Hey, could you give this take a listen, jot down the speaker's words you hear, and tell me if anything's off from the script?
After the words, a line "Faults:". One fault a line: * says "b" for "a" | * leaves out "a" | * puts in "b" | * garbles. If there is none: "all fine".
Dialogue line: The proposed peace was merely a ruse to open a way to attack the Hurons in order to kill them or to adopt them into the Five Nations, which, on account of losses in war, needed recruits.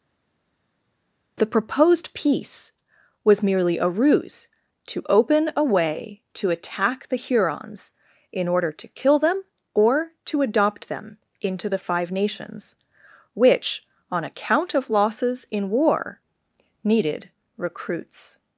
The proposed peace was merely a ruse to open a way to attack the Hurons in order to kill them or to adopt them into the Five Nations, which, on account of losses in war, needed recruits.
Faults:
all fine